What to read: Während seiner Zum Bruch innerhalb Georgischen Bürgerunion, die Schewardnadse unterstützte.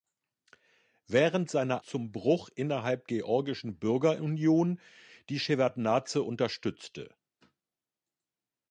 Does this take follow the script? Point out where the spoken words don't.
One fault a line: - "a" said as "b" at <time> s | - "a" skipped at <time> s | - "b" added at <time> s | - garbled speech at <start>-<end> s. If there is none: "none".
none